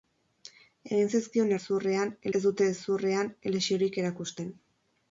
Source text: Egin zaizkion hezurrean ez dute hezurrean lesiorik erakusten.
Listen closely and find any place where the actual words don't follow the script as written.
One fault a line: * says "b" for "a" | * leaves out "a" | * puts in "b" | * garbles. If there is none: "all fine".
all fine